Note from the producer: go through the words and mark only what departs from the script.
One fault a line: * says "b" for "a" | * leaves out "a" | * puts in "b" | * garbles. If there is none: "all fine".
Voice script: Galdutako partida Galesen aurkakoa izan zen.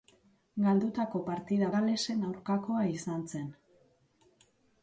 all fine